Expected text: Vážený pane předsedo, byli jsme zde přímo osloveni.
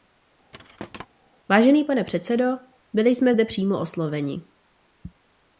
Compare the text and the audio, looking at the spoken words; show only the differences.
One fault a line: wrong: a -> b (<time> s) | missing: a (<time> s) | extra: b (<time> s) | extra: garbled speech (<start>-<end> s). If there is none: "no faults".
no faults